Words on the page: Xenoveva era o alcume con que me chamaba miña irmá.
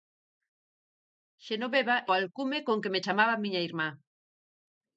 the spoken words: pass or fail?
fail